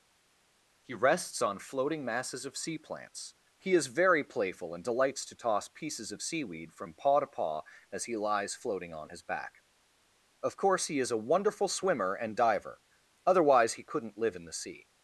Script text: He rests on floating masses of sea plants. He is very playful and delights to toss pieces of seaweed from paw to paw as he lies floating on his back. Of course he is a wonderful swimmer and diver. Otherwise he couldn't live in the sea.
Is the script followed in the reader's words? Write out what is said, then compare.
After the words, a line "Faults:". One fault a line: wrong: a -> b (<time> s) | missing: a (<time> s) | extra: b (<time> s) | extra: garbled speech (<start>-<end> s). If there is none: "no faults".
He rests on floating masses of sea plants. He is very playful and delights to toss pieces of seaweed from paw to paw as he lies floating on his back. Of course he is a wonderful swimmer and diver. Otherwise he couldn't live in the sea.
Faults:
no faults